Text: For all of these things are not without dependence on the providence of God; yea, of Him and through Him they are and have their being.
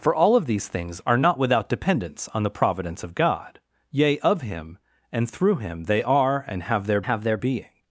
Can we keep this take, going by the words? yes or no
no